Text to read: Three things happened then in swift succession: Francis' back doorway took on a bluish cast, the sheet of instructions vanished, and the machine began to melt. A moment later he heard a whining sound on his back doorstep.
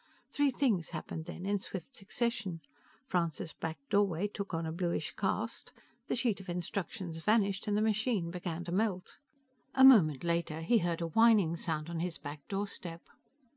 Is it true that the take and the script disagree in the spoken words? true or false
false